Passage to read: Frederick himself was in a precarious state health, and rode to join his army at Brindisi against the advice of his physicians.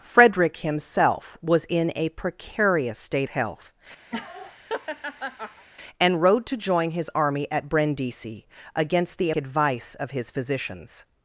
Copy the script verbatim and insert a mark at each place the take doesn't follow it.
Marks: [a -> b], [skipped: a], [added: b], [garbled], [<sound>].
Frederick himself was in a precarious state health, [laugh] and rode to join his army at Brindisi against the advice of his physicians.